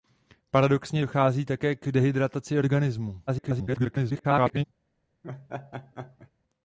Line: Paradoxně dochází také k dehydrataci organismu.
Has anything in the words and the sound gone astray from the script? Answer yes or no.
yes